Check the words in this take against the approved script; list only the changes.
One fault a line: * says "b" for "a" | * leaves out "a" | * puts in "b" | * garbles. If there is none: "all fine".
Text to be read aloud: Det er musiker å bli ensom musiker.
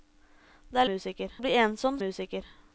all fine